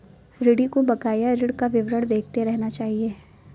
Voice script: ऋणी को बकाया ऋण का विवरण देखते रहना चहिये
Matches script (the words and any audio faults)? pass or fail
pass